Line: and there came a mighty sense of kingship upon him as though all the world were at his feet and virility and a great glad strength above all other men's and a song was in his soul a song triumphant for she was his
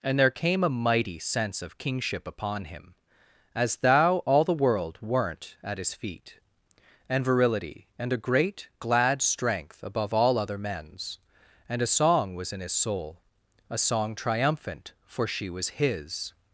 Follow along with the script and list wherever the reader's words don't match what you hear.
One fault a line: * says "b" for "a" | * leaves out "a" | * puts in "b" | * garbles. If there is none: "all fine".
* says "thou" for "though"
* says "weren't" for "were"